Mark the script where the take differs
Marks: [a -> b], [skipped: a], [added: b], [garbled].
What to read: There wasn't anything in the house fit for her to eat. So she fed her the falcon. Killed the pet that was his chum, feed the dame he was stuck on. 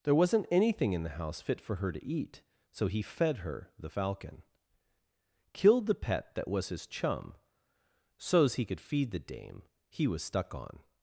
There wasn't anything in the house fit for her to eat. So [she -> he] fed her the falcon. Killed the pet that was his chum, [added: so's he could] feed the dame he was stuck on.